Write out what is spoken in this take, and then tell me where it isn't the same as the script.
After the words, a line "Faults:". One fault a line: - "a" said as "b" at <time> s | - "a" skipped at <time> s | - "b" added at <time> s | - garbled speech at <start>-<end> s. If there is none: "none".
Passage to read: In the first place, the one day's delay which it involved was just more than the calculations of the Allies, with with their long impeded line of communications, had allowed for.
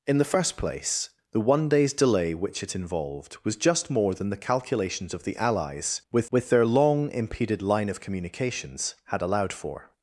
In the first place, the one day's delay which it involved was just more than the calculations of the Allies, with with their long impeded line of communications, had allowed for.
Faults:
none